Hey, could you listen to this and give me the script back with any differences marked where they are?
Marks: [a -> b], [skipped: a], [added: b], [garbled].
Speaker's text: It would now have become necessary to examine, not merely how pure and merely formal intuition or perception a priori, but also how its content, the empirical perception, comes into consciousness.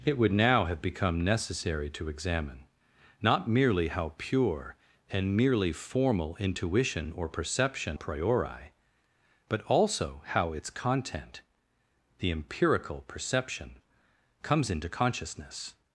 It would now have become necessary to examine, not merely how pure and merely formal intuition or perception [skipped: a] priori, but also how its content, the empirical perception, comes into consciousness.